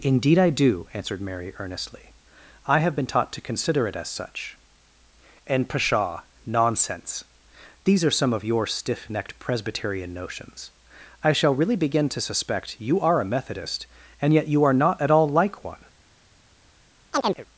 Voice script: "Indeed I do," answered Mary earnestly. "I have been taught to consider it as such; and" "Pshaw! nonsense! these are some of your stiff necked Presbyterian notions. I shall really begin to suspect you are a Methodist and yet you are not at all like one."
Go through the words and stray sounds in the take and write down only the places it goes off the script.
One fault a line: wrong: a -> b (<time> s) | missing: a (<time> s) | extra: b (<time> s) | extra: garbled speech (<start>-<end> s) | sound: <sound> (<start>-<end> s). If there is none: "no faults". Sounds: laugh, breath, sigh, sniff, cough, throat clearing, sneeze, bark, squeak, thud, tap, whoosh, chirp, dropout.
sound: chirp (17.1-17.5 s)